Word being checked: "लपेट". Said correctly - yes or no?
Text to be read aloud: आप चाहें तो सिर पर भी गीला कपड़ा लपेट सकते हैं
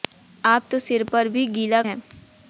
no